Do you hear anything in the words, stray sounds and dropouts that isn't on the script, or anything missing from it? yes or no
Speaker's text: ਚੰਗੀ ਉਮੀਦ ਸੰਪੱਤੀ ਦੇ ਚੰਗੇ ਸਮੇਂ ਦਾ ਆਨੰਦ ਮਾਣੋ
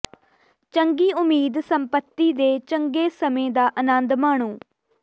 no